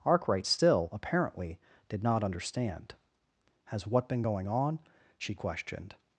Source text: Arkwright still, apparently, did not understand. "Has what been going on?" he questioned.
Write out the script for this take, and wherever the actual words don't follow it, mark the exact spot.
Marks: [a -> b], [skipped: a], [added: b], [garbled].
Arkwright still, apparently, did not understand. "Has what been going on?" [he -> she] questioned.